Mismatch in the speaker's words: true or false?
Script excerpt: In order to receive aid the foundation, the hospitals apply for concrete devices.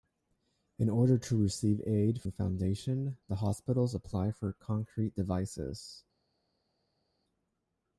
false